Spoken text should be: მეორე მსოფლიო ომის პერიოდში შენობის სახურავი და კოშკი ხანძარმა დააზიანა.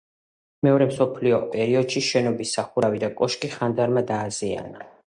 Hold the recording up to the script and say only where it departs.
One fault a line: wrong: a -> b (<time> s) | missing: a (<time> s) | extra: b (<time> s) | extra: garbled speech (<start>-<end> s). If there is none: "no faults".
missing: ომის (1.4 s)